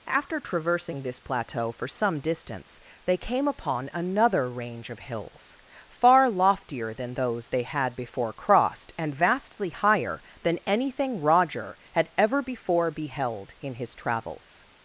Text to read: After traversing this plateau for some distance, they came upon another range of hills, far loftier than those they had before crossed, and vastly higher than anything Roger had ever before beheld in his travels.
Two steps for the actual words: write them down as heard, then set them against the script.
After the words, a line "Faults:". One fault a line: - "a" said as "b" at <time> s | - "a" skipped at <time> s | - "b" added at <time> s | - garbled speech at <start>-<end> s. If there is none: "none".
After traversing this plateau for some distance, they came upon another range of hills, far loftier than those they had before crossed, and vastly higher than anything Roger had ever before beheld in his travels.
Faults:
none